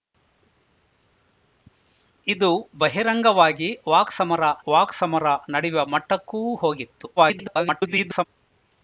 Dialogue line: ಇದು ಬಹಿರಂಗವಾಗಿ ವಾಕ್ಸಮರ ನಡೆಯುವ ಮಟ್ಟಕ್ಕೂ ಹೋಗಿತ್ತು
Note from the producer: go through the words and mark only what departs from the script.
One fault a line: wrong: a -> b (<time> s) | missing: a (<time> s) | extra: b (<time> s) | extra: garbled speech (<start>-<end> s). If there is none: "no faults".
extra: ವಾಕ್ಸಮರ (4.7 s)
extra: garbled speech (7.2-8.2 s)